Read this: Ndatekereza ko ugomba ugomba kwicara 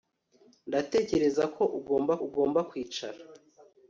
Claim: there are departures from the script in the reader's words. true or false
false